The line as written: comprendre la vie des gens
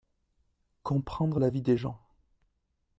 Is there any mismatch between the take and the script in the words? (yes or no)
no